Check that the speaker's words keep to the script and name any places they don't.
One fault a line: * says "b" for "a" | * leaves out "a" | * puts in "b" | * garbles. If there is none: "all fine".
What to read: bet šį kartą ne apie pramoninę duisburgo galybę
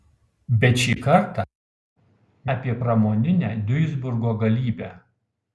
* leaves out "ne"